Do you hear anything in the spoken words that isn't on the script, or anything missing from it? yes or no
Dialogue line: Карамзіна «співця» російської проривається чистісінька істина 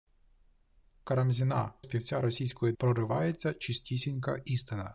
no